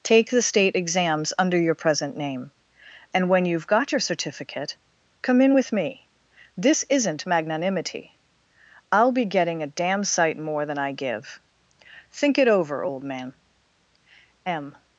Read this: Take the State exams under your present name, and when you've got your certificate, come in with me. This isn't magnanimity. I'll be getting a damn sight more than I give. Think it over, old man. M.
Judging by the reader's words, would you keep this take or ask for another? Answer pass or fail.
pass